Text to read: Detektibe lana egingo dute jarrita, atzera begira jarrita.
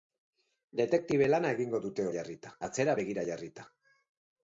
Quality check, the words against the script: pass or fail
pass